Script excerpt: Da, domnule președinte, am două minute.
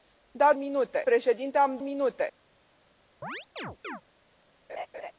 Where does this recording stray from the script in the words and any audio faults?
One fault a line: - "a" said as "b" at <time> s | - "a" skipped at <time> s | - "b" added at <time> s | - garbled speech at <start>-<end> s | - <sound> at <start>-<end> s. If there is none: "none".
- "domnule" said as "minute" at 0.6 s
- "două" skipped at 1.8 s
- chirp at 3.2-4.0 s
- laugh at 4.7-5.1 s